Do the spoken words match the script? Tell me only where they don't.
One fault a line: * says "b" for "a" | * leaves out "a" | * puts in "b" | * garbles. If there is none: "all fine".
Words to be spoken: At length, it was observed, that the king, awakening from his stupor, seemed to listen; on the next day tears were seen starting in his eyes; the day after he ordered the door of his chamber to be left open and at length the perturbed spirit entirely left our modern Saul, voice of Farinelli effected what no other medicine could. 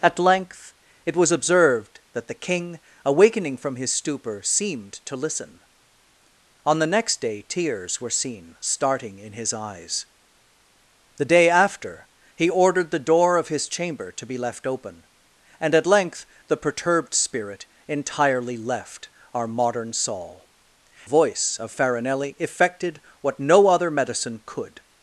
all fine